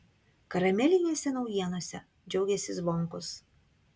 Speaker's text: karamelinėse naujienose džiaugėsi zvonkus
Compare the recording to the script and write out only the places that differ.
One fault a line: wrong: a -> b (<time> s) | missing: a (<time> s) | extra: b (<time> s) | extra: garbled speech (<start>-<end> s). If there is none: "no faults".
no faults